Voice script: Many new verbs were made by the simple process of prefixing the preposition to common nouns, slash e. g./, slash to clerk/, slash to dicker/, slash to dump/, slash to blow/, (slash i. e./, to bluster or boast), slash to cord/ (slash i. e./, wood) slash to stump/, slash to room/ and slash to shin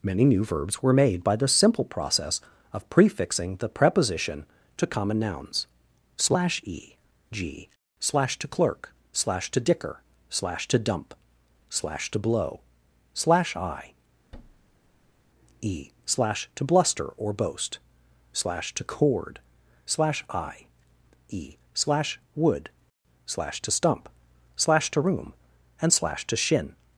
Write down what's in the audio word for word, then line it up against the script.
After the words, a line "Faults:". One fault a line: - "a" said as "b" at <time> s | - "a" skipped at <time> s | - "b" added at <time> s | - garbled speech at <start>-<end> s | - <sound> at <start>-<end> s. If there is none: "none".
Many new verbs were made by the simple process of prefixing the preposition to common nouns, slash e. g./, slash to clerk/, slash to dicker/, slash to dump/, slash to blow/, (slash i. e./, slash to bluster or boast), slash to cord/ (slash i. e./, slash wood) slash to stump/, slash to room/ and slash to shin
Faults:
- thud at 14.3-15.3 s
- "slash" added at 16.0 s
- "slash" added at 21.7 s